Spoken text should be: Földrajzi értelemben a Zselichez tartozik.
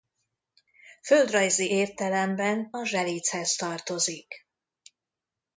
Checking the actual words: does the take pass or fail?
pass